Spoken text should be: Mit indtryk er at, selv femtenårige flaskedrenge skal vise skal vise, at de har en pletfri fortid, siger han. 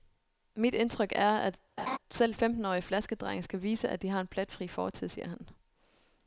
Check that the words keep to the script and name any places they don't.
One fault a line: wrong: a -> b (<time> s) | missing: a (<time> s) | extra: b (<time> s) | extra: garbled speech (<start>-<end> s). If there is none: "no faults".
missing: skal vise (3.9 s)